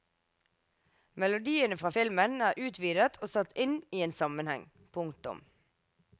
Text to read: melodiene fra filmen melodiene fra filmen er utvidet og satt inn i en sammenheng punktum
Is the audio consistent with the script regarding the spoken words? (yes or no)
no